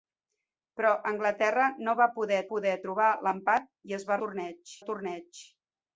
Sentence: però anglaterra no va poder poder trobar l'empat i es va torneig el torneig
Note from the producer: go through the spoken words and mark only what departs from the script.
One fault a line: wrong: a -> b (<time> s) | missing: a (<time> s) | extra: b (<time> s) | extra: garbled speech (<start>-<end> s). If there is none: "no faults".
no faults